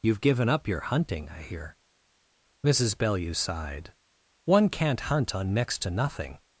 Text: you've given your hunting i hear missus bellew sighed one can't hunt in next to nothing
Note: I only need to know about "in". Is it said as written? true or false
false